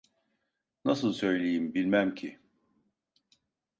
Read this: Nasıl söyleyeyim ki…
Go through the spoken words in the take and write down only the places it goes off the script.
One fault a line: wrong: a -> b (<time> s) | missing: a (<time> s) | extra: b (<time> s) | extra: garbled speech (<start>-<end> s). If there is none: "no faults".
extra: bilmem (1.7 s)